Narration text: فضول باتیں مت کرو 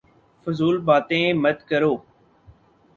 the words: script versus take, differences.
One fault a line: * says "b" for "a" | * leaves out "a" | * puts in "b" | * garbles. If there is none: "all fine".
all fine